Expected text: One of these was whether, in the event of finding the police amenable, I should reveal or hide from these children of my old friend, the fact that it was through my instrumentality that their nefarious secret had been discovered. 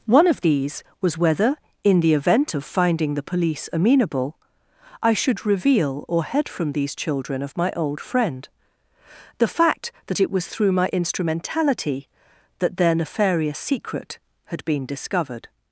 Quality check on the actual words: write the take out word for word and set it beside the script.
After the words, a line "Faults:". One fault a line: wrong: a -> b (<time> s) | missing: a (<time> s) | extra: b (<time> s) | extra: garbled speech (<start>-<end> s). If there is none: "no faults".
One of these was whether, in the event of finding the police amenable, I should reveal or head from these children of my old friend, the fact that it was through my instrumentality that their nefarious secret had been discovered.
Faults:
wrong: hide -> head (6.2 s)